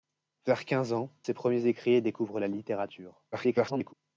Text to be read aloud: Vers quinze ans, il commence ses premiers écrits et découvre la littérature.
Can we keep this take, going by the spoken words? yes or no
no